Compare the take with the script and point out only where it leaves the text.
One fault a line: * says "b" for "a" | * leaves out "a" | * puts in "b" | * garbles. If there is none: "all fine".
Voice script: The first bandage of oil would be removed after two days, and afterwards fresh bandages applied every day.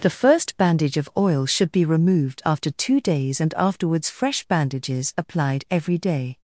* says "should" for "would"